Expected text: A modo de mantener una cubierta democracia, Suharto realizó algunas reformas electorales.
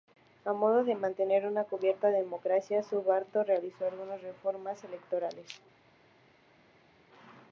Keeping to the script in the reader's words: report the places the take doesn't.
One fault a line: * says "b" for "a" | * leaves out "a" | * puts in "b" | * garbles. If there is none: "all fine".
all fine